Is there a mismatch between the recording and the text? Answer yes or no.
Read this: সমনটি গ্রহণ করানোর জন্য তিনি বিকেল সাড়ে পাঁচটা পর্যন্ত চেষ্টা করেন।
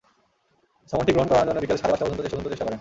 yes